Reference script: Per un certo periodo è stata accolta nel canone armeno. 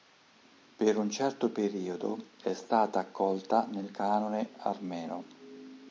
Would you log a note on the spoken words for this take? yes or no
no